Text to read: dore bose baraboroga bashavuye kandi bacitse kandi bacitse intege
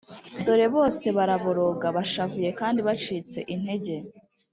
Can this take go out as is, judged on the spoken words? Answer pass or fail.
fail